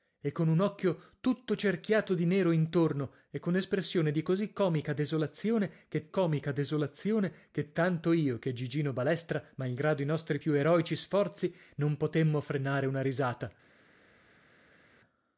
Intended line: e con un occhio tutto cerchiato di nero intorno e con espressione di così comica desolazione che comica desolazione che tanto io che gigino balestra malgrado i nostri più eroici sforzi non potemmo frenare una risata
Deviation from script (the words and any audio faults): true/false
false